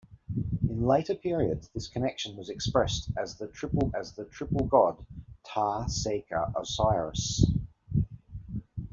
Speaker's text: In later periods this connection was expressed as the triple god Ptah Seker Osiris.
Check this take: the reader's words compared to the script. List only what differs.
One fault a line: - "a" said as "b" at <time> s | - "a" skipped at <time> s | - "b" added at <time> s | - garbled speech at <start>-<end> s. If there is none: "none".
- "as the triple" added at 3.9 s